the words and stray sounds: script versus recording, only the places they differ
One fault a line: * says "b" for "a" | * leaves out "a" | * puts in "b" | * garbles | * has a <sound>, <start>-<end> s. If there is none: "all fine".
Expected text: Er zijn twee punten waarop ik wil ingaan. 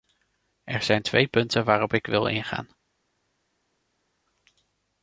all fine